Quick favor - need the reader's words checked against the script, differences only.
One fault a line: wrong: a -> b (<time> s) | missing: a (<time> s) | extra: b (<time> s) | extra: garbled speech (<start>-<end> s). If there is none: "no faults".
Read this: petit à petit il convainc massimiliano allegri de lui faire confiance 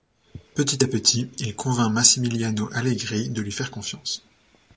no faults